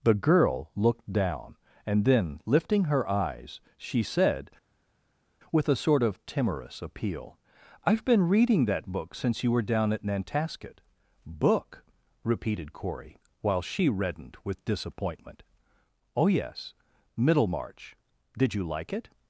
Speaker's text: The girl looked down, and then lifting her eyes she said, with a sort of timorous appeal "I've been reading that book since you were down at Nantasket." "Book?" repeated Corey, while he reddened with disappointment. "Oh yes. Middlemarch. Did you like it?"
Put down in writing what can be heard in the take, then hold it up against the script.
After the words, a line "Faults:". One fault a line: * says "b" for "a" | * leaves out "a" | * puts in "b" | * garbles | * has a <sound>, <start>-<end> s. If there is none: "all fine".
The girl looked down, and then lifting her eyes she said, with a sort of timorous appeal "I've been reading that book since you were down at Nantasket." "Book?" repeated Corey, while she reddened with disappointment. "Oh yes. Middlemarch. Did you like it?"
Faults:
* says "she" for "he"